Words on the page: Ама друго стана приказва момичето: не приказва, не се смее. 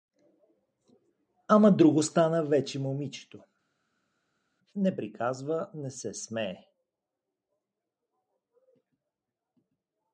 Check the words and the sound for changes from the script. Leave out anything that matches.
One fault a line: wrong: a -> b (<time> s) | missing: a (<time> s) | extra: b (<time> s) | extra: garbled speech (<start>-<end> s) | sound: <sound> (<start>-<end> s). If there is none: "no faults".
wrong: приказва -> вече (2.4 s)